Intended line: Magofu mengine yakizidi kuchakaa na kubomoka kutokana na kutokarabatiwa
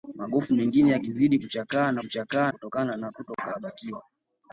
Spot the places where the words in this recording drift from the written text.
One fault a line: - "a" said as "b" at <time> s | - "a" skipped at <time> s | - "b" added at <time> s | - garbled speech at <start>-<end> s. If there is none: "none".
- "kubomoka" said as "kuchakaa" at 2.0 s